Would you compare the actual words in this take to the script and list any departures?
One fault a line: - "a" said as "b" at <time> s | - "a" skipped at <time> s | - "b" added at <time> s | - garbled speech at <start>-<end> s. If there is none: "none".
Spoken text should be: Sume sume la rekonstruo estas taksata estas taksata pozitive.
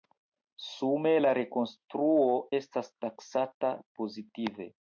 - "sume" skipped at 1.1 s
- "estas taksata" skipped at 3.7 s